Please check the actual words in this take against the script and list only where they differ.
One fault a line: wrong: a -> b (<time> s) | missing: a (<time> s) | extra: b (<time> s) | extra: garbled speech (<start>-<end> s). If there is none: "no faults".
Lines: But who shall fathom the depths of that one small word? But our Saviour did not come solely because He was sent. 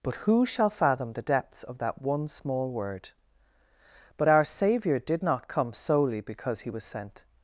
no faults